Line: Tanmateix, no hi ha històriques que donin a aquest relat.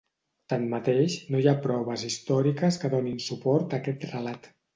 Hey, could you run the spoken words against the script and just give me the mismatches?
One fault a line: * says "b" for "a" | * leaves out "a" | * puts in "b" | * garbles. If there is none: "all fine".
* puts in "proves"
* puts in "suport"